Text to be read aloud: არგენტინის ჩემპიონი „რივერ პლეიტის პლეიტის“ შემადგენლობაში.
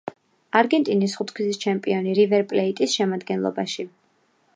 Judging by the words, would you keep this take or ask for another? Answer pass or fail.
fail